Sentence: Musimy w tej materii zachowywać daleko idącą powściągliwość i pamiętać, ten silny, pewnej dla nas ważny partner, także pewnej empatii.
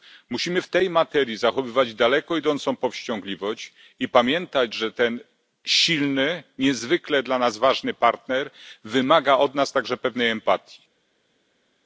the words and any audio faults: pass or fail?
fail